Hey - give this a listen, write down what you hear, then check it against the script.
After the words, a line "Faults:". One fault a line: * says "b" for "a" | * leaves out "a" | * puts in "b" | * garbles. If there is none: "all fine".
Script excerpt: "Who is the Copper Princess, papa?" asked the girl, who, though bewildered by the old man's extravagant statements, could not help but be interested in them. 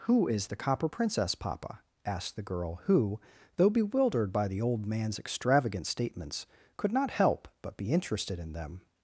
"Who is the Copper Princess, papa?" asked the girl, who, though bewildered by the old man's extravagant statements, could not help but be interested in them.
Faults:
all fine